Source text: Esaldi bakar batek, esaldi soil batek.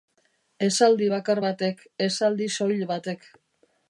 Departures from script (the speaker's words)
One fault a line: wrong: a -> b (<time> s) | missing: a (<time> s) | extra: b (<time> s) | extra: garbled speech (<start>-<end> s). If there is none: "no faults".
no faults